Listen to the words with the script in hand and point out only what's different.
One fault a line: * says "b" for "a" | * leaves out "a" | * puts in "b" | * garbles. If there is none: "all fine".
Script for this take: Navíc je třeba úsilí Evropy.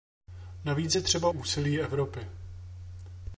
all fine